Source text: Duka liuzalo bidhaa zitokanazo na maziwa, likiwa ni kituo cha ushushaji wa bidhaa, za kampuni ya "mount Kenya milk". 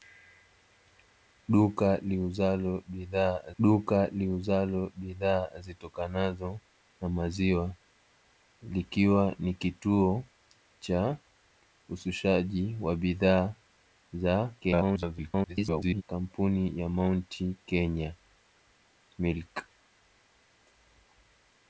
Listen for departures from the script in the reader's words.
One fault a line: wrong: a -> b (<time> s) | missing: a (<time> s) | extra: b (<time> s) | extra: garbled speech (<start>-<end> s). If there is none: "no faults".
extra: duka liuzalo bidhaa (3.6 s)
extra: garbled speech (14.6-16.0 s)